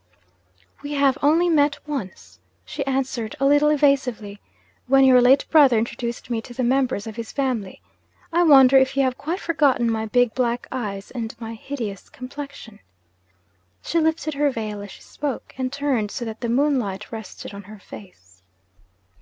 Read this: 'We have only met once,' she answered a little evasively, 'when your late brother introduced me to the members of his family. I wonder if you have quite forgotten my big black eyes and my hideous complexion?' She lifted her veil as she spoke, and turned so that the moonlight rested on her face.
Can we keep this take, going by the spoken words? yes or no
yes